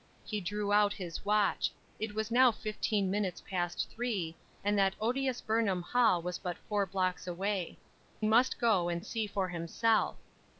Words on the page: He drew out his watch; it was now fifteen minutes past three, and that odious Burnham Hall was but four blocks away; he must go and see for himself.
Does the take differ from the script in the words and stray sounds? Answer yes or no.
yes